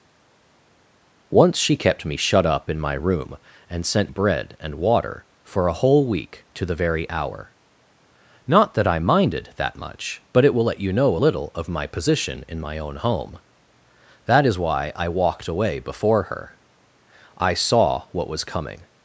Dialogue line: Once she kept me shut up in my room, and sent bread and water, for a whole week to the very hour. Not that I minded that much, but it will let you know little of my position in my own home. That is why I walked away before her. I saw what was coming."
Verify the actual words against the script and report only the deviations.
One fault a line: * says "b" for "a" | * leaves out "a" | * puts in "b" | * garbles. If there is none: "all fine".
all fine